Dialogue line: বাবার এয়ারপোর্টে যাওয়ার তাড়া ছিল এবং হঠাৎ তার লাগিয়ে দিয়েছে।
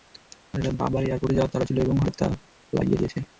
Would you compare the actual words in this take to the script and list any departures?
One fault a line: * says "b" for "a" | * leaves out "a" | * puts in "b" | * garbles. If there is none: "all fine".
all fine